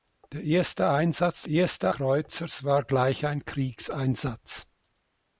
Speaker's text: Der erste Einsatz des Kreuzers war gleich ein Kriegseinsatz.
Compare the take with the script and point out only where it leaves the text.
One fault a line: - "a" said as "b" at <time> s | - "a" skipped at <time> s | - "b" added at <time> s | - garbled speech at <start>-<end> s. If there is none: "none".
- "des" said as "erste" at 1.5 s